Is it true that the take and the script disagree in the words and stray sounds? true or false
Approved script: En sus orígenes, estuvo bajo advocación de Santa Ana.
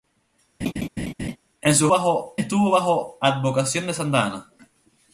true